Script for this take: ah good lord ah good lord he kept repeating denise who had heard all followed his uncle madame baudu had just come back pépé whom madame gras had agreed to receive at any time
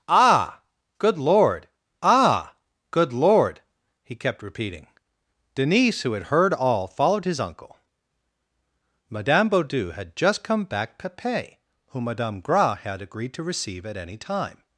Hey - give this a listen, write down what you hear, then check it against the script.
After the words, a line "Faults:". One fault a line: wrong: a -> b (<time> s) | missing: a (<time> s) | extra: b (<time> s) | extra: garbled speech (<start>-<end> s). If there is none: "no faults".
ah good lord ah good lord he kept repeating denise who had heard all followed his uncle madame baudu had just come back pépé whom madame gras had agreed to receive at any time
Faults:
no faults